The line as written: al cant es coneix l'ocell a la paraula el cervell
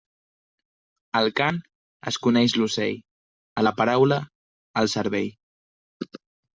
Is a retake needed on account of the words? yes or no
no